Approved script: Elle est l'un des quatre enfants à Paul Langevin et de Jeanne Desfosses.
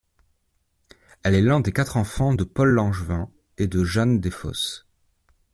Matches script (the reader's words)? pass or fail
fail